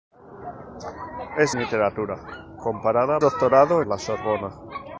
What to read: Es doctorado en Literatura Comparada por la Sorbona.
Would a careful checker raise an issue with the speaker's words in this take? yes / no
yes